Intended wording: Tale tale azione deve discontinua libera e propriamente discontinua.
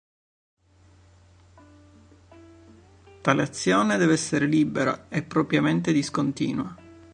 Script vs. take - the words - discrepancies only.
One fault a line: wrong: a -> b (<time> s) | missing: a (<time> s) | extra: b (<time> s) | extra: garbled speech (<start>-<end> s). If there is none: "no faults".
missing: tale (3.4 s)
wrong: discontinua -> essere (4.1 s)